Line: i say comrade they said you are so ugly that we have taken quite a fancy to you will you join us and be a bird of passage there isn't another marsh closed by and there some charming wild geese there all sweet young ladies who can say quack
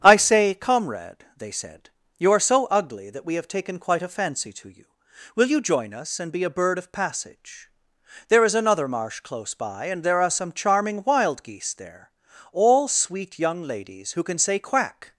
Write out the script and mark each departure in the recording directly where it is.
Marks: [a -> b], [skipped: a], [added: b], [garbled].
i say comrade they said you are so ugly that we have taken quite a fancy to you will you join us and be a bird of passage there [isn't -> is] another marsh [closed -> close] by and there [added: are] some charming wild geese there all sweet young ladies who can say quack